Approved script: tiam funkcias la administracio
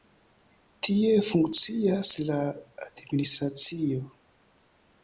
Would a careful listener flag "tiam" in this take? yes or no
yes